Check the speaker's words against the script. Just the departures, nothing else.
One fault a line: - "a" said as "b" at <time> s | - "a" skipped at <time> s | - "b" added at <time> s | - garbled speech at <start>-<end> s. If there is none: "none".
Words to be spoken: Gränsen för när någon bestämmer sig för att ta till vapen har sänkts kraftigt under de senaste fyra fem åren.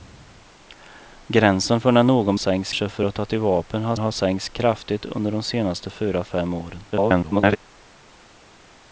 - "bestämmer" said as "sänkts" at 2.3 s
- "har" added at 4.0 s
- garbled speech at 6.9-7.6 s